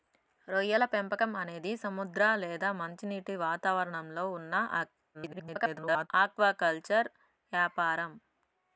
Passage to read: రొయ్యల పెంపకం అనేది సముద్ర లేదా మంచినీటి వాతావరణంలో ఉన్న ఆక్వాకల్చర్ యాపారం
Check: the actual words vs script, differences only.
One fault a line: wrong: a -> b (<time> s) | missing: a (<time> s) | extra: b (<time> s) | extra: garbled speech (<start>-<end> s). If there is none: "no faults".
extra: garbled speech (5.1-6.1 s)